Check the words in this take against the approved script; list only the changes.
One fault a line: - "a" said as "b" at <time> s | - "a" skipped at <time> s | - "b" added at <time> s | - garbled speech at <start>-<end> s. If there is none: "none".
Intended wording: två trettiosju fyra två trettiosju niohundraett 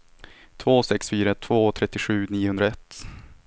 - "trettiosju" said as "sex" at 0.8 s